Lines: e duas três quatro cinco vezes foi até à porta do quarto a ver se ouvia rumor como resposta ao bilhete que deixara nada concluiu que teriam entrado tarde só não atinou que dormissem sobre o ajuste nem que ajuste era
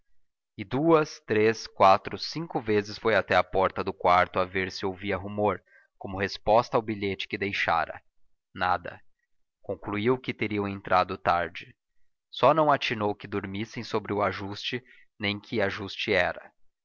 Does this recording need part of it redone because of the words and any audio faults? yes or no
no